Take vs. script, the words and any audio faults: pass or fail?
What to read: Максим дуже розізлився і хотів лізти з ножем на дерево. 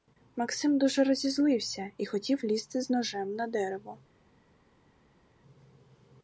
pass